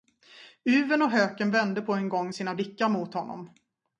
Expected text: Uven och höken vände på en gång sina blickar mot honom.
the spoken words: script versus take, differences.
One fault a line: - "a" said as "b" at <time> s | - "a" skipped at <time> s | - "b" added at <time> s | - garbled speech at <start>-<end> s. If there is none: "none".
none